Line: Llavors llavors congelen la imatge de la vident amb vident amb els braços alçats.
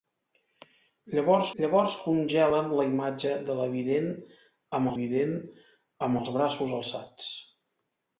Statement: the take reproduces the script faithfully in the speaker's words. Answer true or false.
true